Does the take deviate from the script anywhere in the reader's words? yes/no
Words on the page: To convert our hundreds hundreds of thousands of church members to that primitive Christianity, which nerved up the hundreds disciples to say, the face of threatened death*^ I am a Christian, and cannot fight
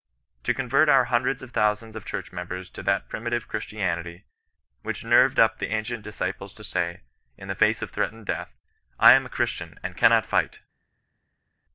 yes